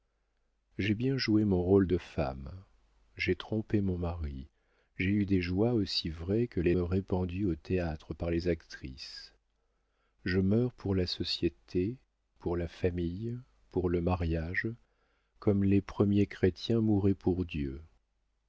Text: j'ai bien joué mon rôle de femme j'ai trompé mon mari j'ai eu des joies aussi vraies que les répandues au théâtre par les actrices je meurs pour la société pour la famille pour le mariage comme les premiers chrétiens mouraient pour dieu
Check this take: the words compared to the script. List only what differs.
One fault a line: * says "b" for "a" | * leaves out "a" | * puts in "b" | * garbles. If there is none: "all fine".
all fine